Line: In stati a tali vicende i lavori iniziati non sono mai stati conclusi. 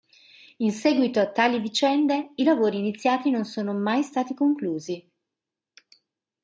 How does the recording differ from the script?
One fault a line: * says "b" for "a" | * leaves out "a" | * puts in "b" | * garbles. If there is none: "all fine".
* says "seguito" for "stati"